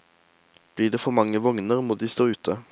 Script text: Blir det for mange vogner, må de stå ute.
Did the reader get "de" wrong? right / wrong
right